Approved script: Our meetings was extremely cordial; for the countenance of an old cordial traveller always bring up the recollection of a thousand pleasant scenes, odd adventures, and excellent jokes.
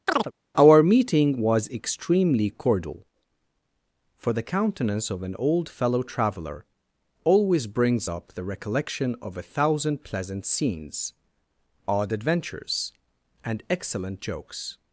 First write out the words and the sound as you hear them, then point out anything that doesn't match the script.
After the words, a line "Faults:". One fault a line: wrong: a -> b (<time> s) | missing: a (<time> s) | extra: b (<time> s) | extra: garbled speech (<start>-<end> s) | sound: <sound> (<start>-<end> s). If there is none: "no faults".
Our meeting was extremely cordial; for the countenance of an old fellow traveller always brings up the recollection of a thousand pleasant scenes, odd adventures, and excellent jokes.
Faults:
sound: chirp (0.1-0.3 s)
wrong: meetings -> meeting (0.8 s)
wrong: cordial -> fellow (5.7 s)
wrong: bring -> brings (7.7 s)